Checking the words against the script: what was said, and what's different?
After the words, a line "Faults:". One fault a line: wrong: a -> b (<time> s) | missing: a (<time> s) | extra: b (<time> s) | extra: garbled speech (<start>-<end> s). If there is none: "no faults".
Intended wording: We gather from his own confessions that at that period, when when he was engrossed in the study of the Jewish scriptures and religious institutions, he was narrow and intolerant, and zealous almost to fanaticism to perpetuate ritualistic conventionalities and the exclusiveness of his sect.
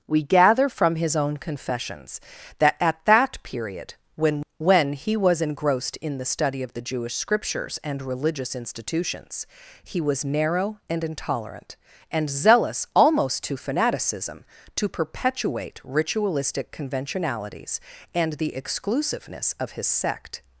We gather from his own confessions that at that period, when when he was engrossed in the study of the Jewish scriptures and religious institutions, he was narrow and intolerant, and zealous almost to fanaticism to perpetuate ritualistic conventionalities and the exclusiveness of his sect.
Faults:
no faults